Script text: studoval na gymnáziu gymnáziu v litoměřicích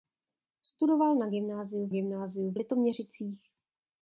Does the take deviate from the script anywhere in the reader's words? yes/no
no